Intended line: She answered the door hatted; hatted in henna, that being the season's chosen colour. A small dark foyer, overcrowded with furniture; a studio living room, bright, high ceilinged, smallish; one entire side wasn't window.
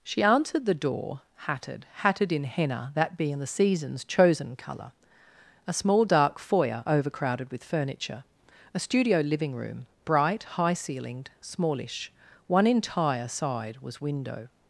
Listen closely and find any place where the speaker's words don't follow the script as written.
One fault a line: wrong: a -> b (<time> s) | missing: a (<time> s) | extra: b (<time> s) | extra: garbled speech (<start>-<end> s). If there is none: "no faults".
wrong: wasn't -> was (13.8 s)